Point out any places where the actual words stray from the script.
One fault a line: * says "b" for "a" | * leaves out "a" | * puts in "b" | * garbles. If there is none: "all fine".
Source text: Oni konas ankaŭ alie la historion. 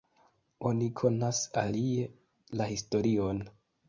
* leaves out "ankaŭ"